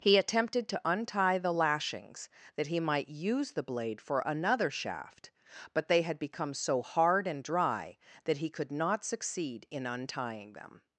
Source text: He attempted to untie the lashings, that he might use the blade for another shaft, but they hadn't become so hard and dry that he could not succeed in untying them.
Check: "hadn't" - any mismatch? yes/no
yes